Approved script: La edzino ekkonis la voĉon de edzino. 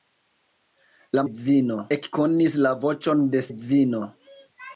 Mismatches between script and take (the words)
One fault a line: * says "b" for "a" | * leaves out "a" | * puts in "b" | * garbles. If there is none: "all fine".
all fine